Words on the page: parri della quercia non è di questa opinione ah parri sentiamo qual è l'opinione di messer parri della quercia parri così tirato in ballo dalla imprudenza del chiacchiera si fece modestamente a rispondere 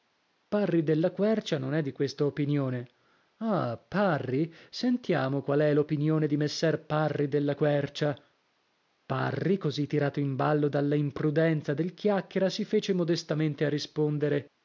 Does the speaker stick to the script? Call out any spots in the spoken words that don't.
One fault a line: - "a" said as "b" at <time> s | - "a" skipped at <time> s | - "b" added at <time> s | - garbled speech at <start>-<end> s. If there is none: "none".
none